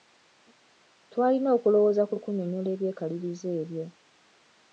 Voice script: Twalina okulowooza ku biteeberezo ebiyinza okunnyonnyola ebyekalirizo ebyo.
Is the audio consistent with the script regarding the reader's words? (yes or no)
no